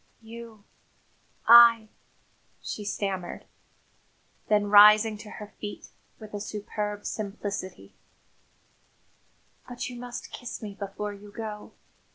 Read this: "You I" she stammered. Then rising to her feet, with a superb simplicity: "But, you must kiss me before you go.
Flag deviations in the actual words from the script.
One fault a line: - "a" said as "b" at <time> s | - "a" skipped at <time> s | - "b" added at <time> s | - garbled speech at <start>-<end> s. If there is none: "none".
none